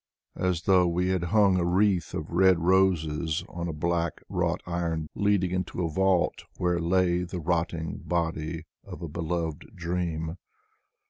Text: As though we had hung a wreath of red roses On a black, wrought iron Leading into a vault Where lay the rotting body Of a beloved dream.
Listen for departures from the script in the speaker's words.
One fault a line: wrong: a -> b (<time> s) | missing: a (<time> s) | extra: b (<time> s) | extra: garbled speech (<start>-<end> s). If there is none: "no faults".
no faults